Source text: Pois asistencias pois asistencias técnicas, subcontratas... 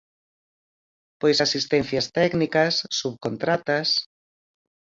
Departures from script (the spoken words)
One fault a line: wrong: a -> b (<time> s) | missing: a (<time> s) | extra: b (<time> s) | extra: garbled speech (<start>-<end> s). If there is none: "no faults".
missing: pois asistencias (2.1 s)